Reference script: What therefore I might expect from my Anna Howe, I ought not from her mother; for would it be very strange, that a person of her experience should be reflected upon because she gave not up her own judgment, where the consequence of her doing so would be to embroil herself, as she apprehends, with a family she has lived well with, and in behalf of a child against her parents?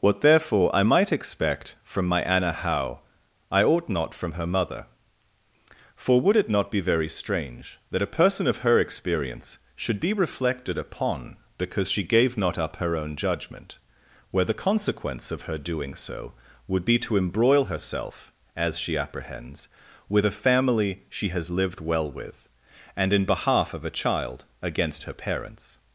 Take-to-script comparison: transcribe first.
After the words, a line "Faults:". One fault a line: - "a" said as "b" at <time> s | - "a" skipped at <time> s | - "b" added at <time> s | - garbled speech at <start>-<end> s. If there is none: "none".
What therefore I might expect from my Anna Howe, I ought not from her mother; for would it not be very strange, that a person of her experience should be reflected upon because she gave not up her own judgment, where the consequence of her doing so would be to embroil herself, as she apprehends, with a family she has lived well with, and in behalf of a child against her parents?
Faults:
- "not" added at 6.5 s